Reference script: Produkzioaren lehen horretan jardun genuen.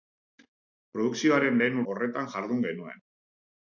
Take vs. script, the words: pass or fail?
pass